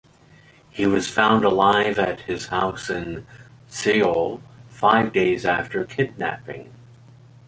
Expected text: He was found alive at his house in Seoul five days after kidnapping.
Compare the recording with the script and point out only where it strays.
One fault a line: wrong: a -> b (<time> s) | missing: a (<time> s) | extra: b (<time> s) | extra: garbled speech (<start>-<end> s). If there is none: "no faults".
no faults